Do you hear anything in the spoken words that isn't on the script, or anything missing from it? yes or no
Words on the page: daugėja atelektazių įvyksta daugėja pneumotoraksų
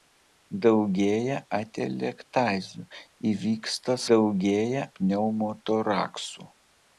no